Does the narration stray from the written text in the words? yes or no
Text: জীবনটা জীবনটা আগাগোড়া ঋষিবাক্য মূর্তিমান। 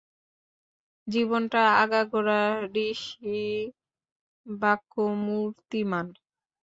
yes